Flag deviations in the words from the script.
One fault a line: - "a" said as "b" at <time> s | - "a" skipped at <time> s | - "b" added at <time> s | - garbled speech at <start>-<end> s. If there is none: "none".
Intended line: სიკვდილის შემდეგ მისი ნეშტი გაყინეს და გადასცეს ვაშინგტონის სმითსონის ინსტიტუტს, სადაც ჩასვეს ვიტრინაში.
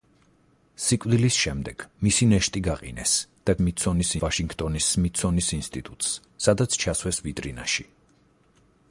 - "გადასცეს" said as "სმითსონის" at 3.6 s